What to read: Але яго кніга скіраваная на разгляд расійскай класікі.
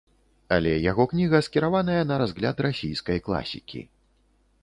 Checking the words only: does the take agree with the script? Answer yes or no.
yes